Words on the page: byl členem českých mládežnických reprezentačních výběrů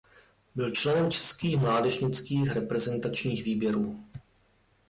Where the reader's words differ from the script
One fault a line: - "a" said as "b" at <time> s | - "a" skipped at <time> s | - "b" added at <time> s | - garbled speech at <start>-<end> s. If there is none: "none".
none